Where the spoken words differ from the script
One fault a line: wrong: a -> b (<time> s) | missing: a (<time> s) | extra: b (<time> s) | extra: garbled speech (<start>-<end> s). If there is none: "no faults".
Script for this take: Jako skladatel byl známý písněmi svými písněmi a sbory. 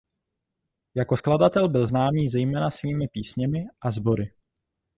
wrong: písněmi -> zejména (2.3 s)